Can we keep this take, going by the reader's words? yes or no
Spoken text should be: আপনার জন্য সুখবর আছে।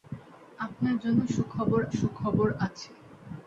no